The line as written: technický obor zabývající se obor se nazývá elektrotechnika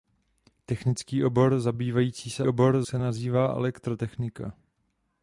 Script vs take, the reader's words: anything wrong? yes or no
no